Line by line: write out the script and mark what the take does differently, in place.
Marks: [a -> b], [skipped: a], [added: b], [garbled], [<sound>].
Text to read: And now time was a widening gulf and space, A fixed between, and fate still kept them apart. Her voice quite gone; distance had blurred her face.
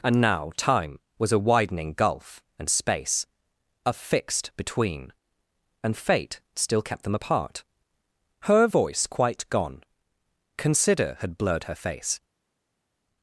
And now time was a widening gulf and space, A fixed between, and fate still kept them apart. Her voice quite gone; [distance -> consider] had blurred her face.